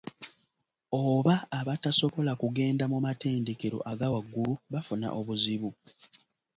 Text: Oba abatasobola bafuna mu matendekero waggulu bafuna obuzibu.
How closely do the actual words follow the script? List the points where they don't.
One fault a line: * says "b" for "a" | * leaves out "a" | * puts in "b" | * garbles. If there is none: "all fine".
* says "kugenda" for "bafuna"
* puts in "aga"